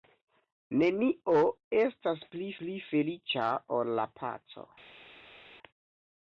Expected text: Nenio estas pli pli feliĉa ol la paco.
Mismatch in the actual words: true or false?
false